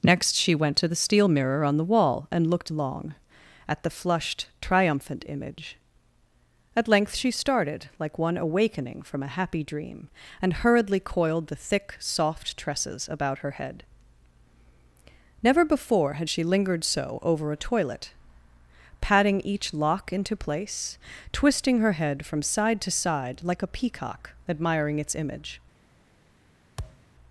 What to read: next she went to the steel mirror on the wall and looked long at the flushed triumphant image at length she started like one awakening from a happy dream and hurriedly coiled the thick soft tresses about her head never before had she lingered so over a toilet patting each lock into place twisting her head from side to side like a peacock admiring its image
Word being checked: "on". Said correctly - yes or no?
yes